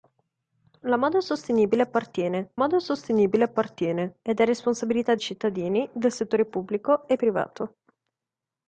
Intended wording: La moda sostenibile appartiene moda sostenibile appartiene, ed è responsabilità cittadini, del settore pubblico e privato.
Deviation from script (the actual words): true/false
false